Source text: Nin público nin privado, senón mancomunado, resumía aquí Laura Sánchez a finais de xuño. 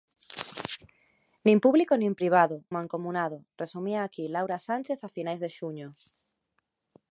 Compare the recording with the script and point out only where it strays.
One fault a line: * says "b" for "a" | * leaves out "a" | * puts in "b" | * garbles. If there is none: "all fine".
* leaves out "senón"